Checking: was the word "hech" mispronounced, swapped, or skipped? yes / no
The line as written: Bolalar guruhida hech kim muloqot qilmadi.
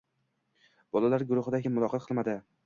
yes